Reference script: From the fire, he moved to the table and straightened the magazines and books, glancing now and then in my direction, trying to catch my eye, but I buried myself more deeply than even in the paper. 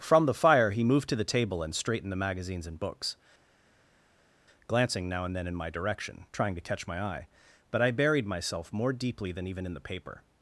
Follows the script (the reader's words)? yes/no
yes